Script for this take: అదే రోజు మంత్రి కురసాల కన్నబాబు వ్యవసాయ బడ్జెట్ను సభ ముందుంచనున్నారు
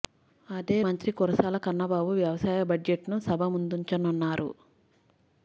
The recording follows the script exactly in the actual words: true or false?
false